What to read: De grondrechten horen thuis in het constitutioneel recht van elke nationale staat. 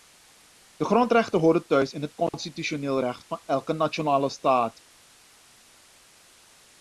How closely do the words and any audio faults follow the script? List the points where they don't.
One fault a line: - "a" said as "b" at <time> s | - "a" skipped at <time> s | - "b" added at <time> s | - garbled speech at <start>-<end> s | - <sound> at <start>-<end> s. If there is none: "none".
none